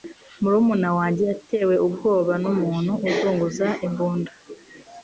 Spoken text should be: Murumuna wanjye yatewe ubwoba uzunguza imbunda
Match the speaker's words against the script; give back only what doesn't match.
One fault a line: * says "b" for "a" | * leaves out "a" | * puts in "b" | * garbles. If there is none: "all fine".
* puts in "numuntu"